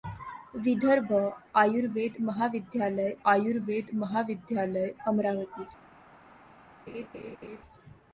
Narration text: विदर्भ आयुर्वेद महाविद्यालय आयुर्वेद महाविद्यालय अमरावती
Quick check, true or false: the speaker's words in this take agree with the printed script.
true